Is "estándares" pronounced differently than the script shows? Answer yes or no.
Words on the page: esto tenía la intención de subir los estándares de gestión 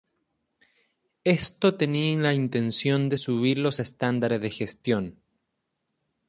no